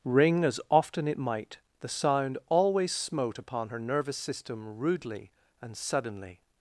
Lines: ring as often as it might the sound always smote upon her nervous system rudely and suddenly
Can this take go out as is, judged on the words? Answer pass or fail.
fail